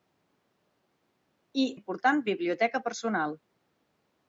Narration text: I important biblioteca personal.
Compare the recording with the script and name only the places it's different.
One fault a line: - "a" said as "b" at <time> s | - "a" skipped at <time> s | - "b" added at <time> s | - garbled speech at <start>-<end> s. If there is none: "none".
none